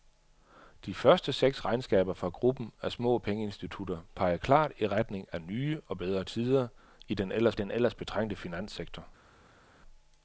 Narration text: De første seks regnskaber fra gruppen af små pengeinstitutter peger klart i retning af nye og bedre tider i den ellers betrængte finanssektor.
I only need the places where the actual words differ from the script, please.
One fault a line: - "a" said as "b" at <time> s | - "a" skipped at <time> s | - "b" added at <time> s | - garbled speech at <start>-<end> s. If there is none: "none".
- "den ellers" added at 7.5 s